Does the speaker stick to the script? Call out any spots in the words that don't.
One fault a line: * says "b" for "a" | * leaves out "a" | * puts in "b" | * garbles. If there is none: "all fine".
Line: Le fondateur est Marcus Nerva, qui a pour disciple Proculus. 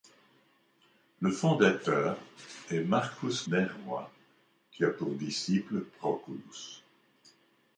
all fine